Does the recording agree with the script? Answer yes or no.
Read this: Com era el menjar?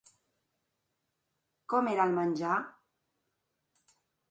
yes